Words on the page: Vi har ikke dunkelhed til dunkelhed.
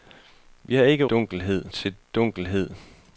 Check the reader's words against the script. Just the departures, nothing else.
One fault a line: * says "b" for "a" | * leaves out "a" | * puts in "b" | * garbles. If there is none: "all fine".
all fine